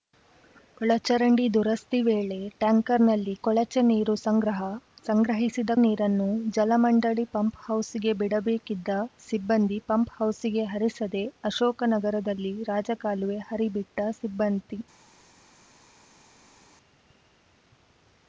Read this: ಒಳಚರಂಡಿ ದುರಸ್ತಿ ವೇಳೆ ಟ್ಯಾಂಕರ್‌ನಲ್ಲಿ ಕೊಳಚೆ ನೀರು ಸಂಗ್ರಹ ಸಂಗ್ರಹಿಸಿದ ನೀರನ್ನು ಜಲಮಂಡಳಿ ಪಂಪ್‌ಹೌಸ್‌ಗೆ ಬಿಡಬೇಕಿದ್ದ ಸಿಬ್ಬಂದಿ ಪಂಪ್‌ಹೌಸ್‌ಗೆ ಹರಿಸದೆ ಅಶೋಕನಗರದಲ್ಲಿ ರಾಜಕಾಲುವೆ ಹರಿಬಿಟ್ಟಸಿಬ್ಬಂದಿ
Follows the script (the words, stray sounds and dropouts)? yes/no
yes